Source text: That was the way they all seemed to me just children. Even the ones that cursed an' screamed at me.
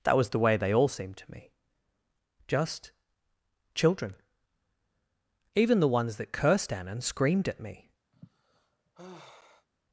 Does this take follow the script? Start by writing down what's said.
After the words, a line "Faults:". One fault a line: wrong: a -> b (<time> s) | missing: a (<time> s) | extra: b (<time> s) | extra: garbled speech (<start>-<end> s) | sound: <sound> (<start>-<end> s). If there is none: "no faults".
That was the way they all seemed to me just children. Even the ones that cursed anne and' screamed at me.
Faults:
wrong: an -> anne and (6.7 s)
sound: sigh (8.1-9.7 s)